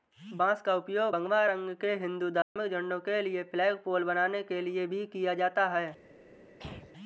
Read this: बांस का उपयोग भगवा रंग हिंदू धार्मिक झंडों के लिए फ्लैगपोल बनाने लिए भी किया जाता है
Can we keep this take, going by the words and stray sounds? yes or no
no